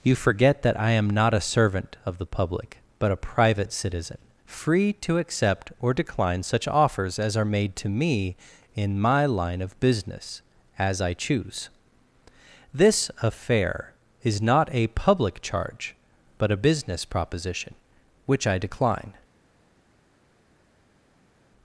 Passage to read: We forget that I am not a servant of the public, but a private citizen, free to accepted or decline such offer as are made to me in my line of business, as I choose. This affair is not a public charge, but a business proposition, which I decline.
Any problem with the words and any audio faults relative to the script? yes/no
yes